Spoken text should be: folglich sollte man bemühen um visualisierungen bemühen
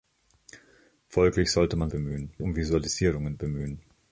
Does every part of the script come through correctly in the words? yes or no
yes